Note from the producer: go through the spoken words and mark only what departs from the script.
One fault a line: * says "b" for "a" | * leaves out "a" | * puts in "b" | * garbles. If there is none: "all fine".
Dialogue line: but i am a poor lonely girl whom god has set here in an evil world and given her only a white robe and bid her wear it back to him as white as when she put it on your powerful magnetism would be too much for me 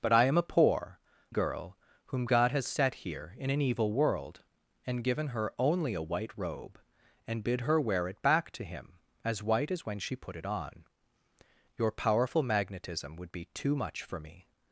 * leaves out "lonely"